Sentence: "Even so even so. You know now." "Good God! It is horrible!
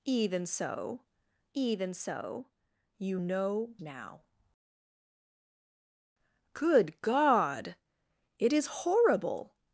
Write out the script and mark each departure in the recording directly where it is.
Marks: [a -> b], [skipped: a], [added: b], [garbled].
"Even so even so. You know now." "Good God! It is horrible!